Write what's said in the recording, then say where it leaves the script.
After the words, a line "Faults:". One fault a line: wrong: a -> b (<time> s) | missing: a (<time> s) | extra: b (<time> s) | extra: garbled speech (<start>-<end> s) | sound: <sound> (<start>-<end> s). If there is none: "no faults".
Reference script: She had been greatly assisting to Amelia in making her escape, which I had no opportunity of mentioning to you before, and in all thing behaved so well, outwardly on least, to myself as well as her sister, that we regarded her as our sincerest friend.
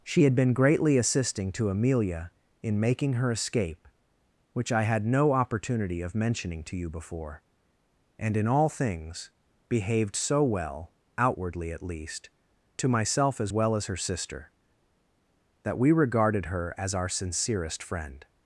She had been greatly assisting to Amelia in making her escape, which I had no opportunity of mentioning to you before, and in all things behaved so well, outwardly at least, to myself as well as her sister, that we regarded her as our sincerest friend.
Faults:
wrong: thing -> things (8.7 s)
wrong: on -> at (11.7 s)